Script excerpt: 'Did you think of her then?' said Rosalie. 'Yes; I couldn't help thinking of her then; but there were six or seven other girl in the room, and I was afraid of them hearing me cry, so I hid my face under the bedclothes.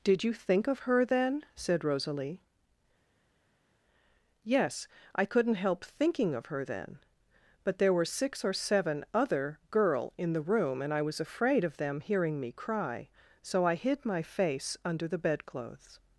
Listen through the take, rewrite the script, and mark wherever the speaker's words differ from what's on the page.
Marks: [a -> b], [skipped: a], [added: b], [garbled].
'Did you think of her then?' said Rosalie. 'Yes; I couldn't help thinking of her then; but there were six or seven other girl in the room, and I was afraid of them hearing me cry, so I hid my face under the bedclothes.